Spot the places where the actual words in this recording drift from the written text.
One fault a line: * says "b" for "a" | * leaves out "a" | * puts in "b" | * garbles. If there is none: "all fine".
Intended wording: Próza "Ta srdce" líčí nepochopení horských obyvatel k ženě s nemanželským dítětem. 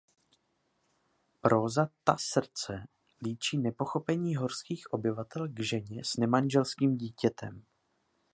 all fine